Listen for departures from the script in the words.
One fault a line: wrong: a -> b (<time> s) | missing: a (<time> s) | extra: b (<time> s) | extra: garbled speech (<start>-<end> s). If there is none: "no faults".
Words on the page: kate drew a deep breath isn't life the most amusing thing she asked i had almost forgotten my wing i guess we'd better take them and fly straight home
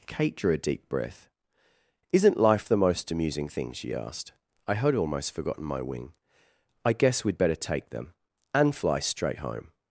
no faults